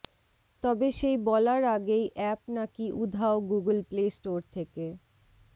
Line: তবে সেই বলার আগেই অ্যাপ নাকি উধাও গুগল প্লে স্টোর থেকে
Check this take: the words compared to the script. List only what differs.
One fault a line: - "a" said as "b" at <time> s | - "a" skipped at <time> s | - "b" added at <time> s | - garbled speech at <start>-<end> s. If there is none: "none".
none